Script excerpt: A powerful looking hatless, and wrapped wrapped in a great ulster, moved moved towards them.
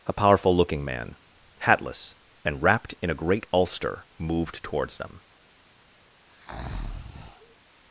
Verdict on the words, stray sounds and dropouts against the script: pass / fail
fail